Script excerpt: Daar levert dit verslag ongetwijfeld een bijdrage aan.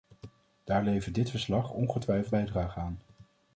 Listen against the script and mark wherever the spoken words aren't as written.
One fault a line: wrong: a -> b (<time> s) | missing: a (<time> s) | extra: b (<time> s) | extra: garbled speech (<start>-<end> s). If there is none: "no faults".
missing: een (2.4 s)